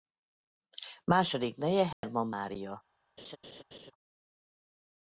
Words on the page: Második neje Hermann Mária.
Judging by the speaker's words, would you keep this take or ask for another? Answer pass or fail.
pass